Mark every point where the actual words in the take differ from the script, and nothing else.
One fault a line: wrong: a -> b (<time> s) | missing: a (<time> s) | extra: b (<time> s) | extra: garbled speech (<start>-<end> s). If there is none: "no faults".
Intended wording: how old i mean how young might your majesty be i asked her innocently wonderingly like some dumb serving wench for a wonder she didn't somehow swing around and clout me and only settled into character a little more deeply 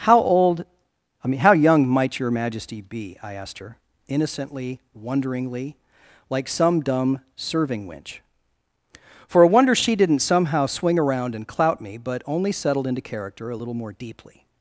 wrong: and -> but (12.0 s)